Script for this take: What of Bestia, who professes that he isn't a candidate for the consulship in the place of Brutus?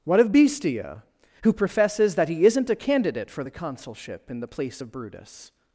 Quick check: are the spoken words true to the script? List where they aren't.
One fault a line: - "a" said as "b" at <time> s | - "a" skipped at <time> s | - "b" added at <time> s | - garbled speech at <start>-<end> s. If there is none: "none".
none